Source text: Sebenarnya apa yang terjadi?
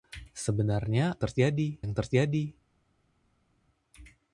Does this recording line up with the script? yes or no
no